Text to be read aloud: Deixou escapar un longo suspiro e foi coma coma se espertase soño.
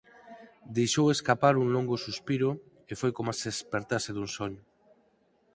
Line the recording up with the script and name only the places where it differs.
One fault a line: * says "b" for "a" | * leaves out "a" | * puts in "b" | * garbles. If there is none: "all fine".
* leaves out "coma"
* puts in "dun"